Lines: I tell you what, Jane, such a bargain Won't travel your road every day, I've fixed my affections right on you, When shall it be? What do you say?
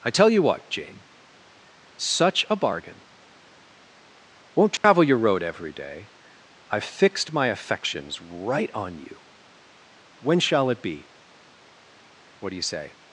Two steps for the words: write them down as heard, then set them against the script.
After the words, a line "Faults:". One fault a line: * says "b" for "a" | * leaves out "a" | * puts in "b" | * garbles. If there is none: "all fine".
I tell you what, Jane, such a bargain Won't travel your road every day, I've fixed my affections right on you, When shall it be? What do you say?
Faults:
all fine